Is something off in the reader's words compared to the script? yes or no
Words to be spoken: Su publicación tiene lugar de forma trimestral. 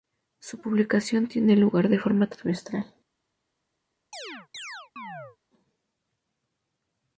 no